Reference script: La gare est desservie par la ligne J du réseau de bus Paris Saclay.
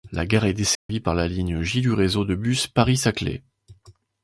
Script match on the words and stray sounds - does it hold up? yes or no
no